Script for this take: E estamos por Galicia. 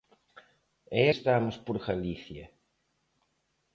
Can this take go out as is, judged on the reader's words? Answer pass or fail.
pass